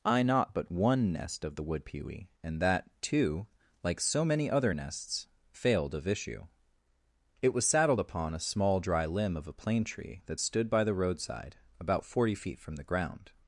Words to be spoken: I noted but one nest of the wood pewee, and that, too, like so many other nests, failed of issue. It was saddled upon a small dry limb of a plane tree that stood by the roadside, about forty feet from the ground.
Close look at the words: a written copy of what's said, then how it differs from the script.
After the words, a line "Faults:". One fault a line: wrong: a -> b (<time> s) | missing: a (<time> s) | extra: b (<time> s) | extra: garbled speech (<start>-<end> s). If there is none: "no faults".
I not but one nest of the wood pewee, and that, too, like so many other nests, failed of issue. It was saddled upon a small dry limb of a plane tree that stood by the roadside, about forty feet from the ground.
Faults:
wrong: noted -> not (0.2 s)